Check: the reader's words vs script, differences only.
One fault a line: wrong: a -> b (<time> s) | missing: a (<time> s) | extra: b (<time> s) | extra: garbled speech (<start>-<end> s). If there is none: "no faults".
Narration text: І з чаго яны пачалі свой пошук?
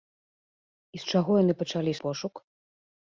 missing: свой (1.9 s)